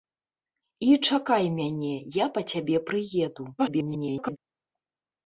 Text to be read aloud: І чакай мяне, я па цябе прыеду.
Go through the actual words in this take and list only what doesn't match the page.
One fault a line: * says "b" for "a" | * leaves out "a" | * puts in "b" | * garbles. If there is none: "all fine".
* garbles